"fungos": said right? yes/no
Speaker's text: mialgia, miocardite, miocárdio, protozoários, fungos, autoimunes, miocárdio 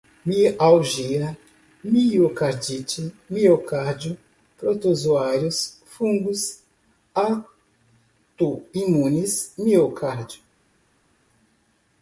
yes